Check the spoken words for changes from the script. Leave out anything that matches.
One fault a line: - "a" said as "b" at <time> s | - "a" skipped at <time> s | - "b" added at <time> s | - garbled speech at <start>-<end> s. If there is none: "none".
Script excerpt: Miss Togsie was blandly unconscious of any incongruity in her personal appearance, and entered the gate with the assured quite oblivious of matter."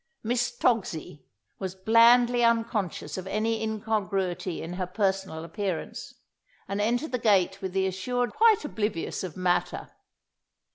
none